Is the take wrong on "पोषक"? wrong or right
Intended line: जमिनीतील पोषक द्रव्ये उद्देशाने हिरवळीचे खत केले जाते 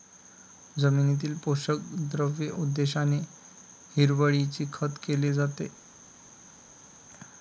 right